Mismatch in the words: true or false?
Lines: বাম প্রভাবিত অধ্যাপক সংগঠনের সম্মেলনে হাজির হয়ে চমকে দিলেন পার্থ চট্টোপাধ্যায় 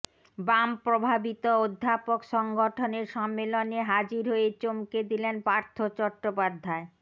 false